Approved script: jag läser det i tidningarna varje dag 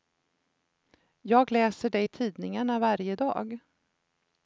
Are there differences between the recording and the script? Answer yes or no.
no